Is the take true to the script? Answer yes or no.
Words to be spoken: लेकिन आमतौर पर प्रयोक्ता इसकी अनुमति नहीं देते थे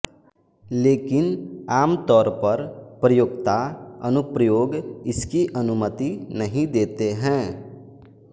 no